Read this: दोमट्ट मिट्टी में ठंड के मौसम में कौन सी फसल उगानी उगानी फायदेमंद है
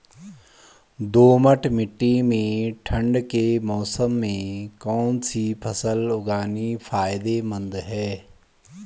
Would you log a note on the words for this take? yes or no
yes